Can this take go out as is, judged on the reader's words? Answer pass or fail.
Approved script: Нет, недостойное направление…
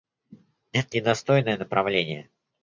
pass